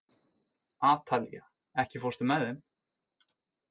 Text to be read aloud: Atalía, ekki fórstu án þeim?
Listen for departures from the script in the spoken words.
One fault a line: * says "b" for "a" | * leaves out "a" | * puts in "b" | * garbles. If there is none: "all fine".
* says "með" for "án"